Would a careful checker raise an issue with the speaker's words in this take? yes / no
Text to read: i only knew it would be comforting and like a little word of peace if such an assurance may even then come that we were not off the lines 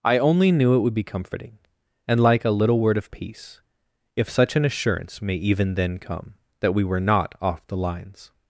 no